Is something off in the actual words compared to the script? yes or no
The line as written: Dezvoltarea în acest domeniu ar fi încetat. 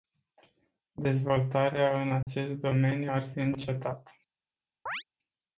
no